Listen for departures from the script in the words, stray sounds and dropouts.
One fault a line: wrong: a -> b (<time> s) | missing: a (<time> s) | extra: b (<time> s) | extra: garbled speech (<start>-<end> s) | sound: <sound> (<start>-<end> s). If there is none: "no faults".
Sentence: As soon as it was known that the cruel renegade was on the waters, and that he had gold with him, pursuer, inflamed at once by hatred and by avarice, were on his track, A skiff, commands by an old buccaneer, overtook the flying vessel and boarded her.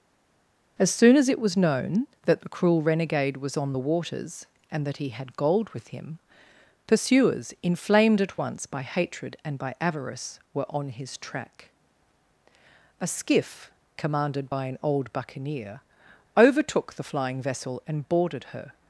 wrong: pursuer -> pursuers (6.8 s)
wrong: commands -> commanded (14.0 s)